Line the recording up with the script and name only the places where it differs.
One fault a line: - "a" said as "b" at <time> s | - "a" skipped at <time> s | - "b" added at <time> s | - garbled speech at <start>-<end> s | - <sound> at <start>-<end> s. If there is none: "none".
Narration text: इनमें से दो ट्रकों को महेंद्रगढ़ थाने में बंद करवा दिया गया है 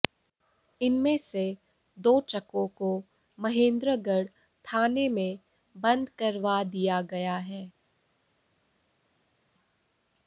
none